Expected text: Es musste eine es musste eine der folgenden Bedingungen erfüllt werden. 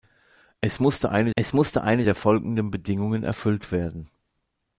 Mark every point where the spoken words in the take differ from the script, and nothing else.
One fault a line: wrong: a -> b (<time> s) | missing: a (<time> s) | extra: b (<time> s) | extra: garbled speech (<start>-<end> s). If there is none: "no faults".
no faults